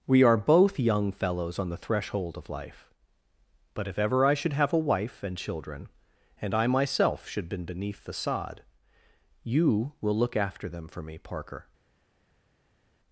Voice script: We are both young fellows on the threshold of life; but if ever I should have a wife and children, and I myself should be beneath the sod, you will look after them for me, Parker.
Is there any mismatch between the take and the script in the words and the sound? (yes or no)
yes